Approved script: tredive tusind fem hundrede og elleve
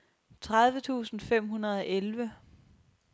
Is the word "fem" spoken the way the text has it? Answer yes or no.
yes